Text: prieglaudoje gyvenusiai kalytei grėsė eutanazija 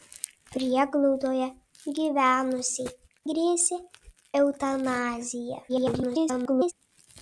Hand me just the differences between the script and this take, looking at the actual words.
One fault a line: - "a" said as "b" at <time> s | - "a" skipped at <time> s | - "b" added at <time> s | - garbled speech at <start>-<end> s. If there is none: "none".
- "kalytei" skipped at 2.9 s
- garbled speech at 5.7-6.7 s